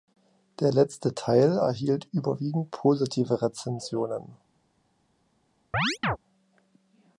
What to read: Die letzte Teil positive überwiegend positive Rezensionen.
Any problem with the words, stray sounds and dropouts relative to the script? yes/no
yes